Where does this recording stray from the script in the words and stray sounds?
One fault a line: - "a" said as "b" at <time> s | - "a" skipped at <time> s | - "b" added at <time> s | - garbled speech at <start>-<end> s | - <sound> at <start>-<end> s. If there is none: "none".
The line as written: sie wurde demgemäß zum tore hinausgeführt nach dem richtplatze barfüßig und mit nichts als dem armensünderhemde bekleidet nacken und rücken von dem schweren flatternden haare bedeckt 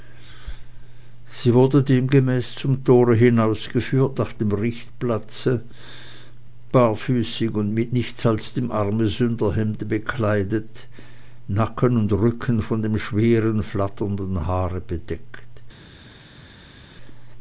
none